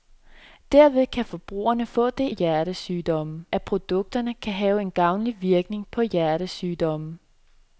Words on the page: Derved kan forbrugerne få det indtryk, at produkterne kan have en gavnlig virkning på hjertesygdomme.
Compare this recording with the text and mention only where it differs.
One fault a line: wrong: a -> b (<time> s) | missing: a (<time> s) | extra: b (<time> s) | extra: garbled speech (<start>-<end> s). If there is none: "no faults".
wrong: indtryk -> hjertesygdomme (2.3 s)